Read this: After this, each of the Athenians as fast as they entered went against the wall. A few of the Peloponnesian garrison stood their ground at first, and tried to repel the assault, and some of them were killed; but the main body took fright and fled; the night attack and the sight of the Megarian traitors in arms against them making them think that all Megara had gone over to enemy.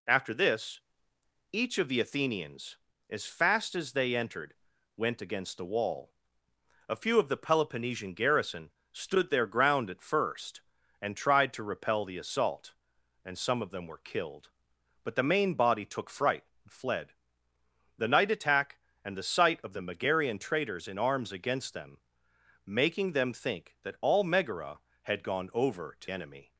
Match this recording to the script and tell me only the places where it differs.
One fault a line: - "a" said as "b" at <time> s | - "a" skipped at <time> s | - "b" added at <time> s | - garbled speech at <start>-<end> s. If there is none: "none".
none